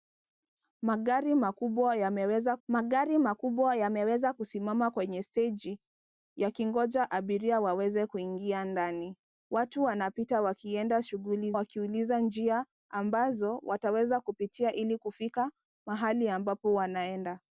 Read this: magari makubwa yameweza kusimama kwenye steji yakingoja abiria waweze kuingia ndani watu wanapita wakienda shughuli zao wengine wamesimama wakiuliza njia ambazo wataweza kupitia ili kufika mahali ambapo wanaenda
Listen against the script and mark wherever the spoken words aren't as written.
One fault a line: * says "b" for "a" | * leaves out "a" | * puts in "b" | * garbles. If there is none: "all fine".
* puts in "magari makubwa yameweza"
* leaves out "zao wengine wamesimama"